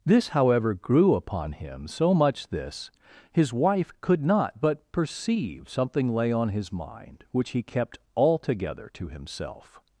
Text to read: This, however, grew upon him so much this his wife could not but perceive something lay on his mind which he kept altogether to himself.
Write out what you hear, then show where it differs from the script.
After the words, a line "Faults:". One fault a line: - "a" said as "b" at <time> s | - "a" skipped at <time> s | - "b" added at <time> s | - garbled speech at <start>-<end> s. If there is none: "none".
This, however, grew upon him so much this his wife could not but perceive something lay on his mind which he kept altogether to himself.
Faults:
none